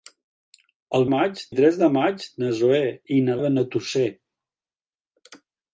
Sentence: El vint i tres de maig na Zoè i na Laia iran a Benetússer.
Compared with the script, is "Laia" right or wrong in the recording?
wrong